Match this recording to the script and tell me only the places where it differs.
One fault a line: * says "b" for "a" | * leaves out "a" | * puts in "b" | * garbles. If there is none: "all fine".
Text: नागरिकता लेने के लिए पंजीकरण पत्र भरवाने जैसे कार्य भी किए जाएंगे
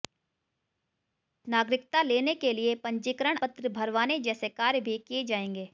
all fine